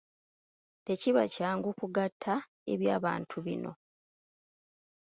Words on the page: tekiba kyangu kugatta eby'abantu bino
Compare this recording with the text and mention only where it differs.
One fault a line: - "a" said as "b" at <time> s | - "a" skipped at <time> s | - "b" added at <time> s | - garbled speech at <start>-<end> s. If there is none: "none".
none